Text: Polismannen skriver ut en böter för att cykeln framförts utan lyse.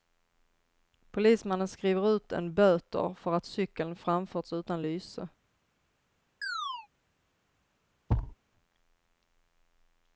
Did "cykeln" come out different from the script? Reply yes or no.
no